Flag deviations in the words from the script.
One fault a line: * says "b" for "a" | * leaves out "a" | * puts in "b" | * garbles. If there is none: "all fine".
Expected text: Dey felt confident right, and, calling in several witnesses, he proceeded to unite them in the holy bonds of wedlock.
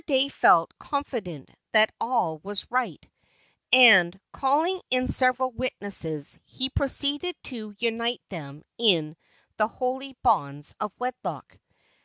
* puts in "that all was"